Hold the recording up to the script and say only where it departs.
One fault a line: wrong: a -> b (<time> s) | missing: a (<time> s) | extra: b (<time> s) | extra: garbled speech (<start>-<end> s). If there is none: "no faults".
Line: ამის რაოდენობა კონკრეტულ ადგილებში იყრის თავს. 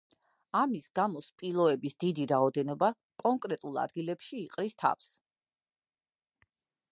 extra: გამო სპილოების დიდი (1.0 s)